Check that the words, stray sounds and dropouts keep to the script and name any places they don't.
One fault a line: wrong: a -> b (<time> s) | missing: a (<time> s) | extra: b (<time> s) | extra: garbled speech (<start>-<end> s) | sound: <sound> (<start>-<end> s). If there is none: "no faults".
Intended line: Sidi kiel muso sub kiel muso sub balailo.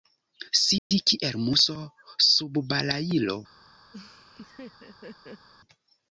sound: dropout (0.8-0.9 s)
missing: kiel muso sub (2.6 s)
sound: laugh (3.9-5.5 s)